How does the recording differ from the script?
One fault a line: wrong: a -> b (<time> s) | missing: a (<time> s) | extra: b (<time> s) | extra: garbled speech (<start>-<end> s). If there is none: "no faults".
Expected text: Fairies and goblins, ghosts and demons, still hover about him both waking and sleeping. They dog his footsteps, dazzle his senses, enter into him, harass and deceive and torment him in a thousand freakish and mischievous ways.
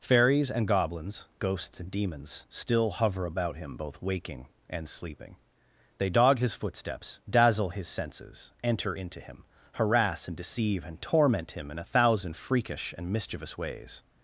no faults